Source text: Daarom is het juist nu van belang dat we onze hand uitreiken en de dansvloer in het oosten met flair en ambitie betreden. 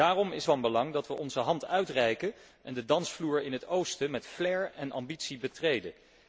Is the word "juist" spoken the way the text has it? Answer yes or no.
no